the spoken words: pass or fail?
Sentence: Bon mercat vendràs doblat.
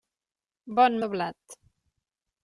fail